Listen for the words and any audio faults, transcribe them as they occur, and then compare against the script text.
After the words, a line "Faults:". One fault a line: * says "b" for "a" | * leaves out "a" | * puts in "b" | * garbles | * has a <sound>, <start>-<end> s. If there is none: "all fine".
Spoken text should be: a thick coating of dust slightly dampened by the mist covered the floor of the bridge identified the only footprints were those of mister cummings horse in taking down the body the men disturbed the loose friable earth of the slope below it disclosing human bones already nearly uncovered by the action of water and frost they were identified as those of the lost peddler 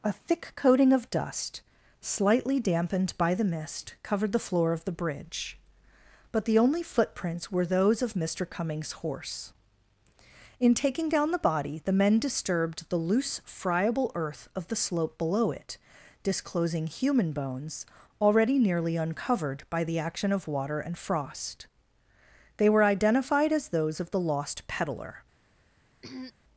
a thick coating of dust slightly dampened by the mist covered the floor of the bridge but the only footprints were those of mister cummings horse in taking down the body the men disturbed the loose friable earth of the slope below it disclosing human bones already nearly uncovered by the action of water and frost they were identified as those of the lost peddler
Faults:
* says "but" for "identified"
* has a throat clearing, 26.0-26.3 s